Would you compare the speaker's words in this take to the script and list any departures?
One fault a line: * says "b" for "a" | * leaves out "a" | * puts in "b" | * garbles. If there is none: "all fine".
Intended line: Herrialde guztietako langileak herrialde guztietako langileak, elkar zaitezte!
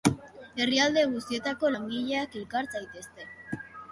* leaves out "herrialde guztietako langileak"